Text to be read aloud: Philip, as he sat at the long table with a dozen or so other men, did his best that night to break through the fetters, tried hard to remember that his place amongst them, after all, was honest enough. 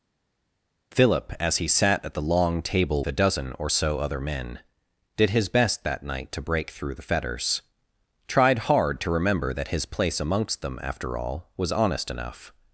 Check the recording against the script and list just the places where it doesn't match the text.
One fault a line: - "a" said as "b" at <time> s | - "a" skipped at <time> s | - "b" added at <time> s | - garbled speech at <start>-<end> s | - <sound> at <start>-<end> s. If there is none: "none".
- "with" skipped at 3.0 s